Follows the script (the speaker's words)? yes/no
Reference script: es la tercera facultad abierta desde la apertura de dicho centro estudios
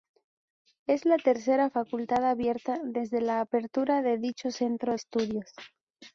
yes